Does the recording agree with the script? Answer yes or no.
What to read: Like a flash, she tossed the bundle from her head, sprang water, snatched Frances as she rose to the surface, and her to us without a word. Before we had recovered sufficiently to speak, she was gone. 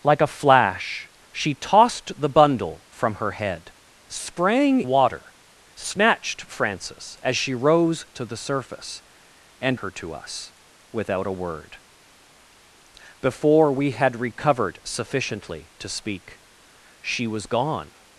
yes